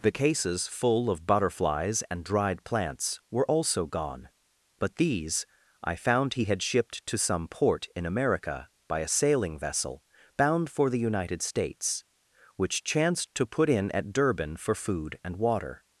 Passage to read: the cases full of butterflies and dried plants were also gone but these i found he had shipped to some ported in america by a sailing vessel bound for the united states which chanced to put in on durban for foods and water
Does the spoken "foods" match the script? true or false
false